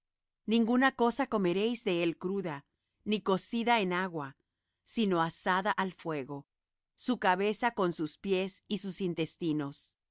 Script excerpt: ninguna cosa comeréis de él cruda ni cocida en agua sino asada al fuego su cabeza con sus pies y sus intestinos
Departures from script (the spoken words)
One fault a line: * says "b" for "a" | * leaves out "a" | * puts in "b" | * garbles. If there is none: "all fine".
all fine